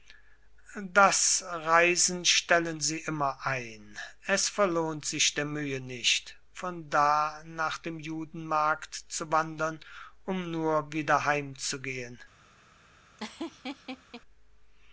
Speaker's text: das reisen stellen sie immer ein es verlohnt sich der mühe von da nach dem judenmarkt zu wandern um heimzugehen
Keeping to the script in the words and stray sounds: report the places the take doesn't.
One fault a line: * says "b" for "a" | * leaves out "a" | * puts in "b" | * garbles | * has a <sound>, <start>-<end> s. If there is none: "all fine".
* puts in "nicht"
* puts in "nur wieder"
* has a laugh, 13.2-14.2 s